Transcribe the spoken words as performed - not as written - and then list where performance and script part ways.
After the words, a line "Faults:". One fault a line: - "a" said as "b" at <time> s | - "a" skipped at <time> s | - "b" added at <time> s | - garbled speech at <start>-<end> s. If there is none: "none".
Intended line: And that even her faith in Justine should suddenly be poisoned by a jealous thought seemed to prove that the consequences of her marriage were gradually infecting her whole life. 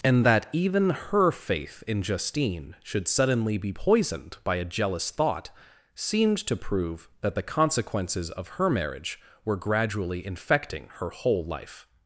And that even her faith in Justine should suddenly be poisoned by a jealous thought seemed to prove that the consequences of her marriage were gradually infecting her whole life.
Faults:
none